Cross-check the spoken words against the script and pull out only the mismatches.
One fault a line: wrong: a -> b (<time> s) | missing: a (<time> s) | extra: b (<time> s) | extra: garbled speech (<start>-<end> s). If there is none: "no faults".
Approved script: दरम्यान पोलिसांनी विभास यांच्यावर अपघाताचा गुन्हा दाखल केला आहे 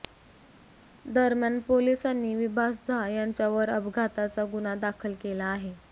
extra: झा (2.9 s)